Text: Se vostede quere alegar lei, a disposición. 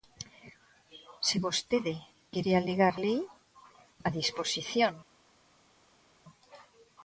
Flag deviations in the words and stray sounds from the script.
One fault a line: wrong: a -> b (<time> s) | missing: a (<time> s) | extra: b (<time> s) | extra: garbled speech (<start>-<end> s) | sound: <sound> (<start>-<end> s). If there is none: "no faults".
no faults